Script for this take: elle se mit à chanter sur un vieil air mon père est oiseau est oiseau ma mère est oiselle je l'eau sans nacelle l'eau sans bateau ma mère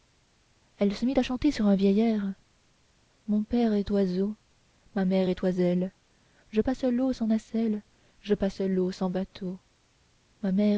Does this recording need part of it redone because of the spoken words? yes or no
yes